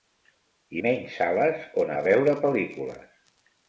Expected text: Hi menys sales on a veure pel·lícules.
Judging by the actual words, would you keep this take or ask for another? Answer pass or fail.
pass